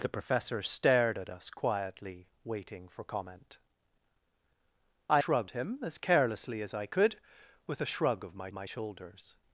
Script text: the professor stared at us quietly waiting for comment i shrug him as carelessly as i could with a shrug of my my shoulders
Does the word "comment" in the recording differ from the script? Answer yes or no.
no